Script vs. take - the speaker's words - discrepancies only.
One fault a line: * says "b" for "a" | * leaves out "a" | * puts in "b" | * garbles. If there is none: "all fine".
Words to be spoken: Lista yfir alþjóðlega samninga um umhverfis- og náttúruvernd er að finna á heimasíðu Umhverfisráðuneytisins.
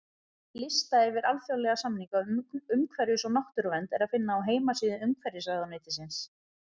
all fine